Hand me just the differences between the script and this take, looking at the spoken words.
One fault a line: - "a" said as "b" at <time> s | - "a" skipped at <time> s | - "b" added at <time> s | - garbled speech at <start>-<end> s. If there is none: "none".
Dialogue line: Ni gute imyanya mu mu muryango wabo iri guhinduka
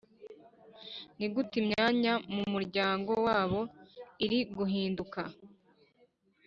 - "mu" skipped at 2.4 s